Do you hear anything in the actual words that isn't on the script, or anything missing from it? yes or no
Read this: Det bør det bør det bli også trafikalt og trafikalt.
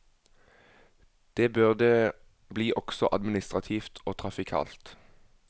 yes